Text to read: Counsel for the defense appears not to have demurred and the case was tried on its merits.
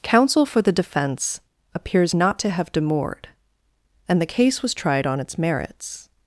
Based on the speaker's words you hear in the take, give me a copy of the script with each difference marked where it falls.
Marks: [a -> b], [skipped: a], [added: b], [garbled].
Counsel for the defense appears not to have demurred and the case was tried on its merits.